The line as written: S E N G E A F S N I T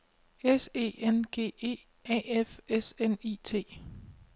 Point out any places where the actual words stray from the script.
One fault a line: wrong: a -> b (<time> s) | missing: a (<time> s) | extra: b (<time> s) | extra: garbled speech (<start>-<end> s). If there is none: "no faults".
no faults